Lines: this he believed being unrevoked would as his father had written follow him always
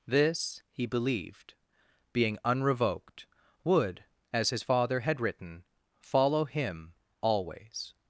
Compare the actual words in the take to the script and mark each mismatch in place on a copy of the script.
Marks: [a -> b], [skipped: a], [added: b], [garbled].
this he believed being unrevoked would as his father had written follow him always